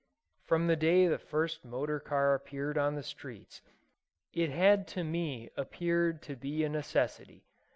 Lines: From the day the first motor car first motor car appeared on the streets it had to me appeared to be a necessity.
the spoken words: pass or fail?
fail